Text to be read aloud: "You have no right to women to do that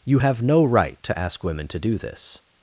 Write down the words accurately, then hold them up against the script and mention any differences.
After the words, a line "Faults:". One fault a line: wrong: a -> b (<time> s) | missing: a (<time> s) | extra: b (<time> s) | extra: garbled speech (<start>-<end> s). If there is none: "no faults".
"You have no right to ask women to do this
Faults:
extra: ask (1.2 s)
wrong: that -> this (2.0 s)